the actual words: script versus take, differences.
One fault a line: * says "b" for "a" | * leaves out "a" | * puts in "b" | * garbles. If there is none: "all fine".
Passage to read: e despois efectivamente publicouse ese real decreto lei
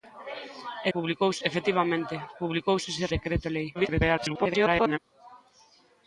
* says "publicouse" for "despois"
* leaves out "real"
* garbles